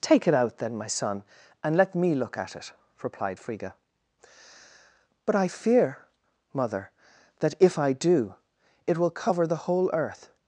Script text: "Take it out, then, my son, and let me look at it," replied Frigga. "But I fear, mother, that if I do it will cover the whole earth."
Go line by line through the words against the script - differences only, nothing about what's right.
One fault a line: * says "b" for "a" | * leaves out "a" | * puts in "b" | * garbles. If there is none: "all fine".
all fine